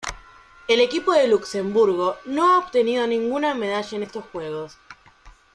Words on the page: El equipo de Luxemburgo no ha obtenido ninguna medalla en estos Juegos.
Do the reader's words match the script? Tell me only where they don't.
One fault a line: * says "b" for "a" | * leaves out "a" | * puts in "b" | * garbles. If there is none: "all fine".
all fine